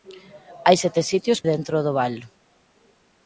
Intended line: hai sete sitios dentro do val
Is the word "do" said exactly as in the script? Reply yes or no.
yes